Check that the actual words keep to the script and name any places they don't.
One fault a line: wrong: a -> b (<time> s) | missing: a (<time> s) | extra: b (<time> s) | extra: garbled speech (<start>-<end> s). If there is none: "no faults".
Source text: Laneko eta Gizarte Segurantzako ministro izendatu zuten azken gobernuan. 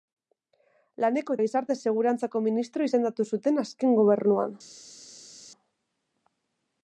missing: eta (1.4 s)